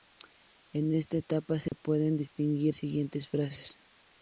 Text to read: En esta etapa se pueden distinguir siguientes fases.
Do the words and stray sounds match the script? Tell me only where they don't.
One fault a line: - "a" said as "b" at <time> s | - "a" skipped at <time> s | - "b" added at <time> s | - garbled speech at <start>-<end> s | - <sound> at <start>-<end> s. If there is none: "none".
- dropout at 1.7-1.7 s